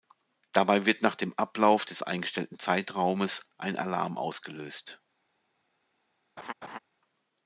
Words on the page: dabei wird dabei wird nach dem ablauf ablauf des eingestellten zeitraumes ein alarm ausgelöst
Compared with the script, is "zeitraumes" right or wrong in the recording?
right